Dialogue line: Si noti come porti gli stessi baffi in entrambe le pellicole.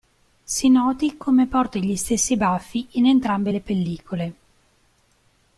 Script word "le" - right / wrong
right